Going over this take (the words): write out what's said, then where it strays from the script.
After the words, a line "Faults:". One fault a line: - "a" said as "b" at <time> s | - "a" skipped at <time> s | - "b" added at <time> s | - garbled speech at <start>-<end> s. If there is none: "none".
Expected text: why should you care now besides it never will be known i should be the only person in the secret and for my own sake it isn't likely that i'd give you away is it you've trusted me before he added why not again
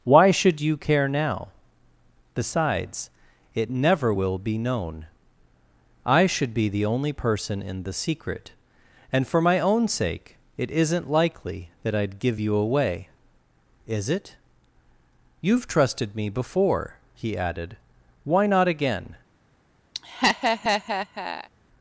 why should you care now besides it never will be known i should be the only person in the secret and for my own sake it isn't likely that i'd give you away is it you've trusted me before he added why not again
Faults:
none